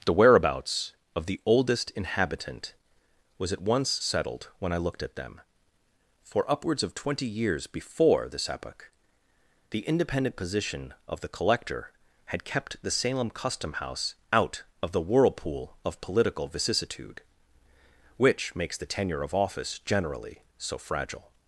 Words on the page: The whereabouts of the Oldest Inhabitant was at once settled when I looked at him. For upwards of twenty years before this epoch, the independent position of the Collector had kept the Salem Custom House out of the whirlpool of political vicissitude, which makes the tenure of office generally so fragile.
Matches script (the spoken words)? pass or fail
fail